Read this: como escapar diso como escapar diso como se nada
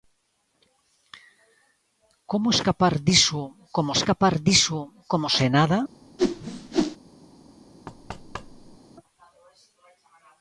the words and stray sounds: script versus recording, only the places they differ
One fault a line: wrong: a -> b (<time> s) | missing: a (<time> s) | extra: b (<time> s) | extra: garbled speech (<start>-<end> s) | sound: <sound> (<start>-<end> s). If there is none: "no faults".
sound: whoosh (6.2-7.0 s)
sound: thud (7.9-8.8 s)